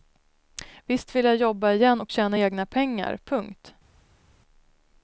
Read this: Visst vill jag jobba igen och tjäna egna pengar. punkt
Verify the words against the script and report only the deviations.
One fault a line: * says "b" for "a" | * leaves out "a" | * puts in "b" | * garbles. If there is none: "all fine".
all fine